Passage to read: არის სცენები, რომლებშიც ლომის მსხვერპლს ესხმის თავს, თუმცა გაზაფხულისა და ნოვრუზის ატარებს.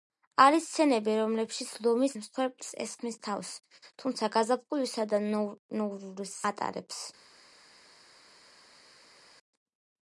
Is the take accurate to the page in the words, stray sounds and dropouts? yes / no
yes